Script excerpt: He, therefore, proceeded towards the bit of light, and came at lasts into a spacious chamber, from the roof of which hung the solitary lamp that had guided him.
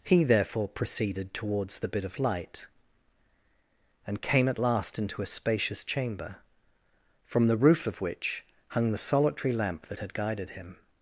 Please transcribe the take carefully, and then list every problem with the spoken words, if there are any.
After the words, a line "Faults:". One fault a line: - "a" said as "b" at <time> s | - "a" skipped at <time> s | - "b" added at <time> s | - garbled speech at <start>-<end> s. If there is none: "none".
He, therefore, proceeded towards the bit of light, and came at last into a spacious chamber, from the roof of which hung the solitary lamp that had guided him.
Faults:
- "lasts" said as "last" at 4.6 s